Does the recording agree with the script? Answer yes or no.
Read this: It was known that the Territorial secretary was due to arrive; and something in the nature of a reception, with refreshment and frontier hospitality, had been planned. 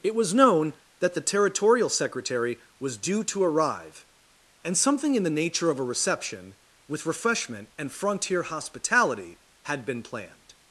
yes